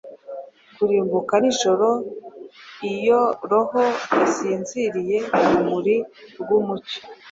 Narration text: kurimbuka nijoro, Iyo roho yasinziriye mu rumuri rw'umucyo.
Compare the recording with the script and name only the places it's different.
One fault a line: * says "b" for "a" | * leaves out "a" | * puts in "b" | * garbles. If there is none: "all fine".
all fine